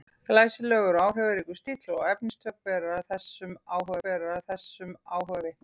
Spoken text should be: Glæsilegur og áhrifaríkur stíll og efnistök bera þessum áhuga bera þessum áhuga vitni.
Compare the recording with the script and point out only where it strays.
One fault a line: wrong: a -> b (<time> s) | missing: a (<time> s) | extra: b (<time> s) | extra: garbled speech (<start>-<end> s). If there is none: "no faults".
no faults